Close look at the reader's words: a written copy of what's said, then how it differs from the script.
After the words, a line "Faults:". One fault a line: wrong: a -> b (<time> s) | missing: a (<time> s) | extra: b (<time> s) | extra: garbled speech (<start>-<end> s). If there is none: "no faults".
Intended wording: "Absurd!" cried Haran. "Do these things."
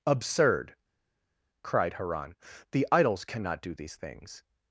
"Absurd!" cried Haran. "The idols cannot do these things."
Faults:
extra: The idols cannot (2.7 s)